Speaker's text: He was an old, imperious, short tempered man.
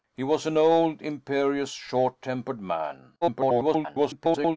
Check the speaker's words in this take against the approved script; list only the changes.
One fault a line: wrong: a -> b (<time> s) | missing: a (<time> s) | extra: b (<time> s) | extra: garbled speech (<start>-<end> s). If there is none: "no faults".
extra: garbled speech (3.2-4.6 s)